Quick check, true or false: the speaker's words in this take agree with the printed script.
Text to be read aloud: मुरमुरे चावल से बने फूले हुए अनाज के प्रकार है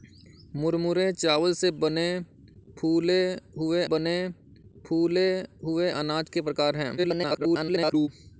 false